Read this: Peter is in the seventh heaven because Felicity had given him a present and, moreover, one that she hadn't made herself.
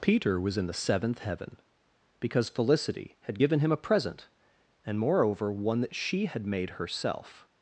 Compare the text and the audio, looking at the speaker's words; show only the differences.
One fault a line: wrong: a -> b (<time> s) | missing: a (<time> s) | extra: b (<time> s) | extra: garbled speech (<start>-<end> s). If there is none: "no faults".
wrong: is -> was (0.4 s)
wrong: hadn't -> had (6.3 s)